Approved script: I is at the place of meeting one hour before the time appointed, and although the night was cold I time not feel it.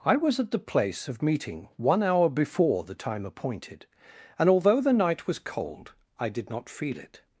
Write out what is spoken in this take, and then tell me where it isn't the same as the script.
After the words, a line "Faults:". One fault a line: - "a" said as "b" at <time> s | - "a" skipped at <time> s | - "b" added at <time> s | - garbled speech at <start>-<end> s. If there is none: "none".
I was at the place of meeting one hour before the time appointed, and although the night was cold I did not feel it.
Faults:
- "is" said as "was" at 0.1 s
- "time" said as "did" at 6.3 s